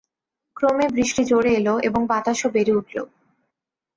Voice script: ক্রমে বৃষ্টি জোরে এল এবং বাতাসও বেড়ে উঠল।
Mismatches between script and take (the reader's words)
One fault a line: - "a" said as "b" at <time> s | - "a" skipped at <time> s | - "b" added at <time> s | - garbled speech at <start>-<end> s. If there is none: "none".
none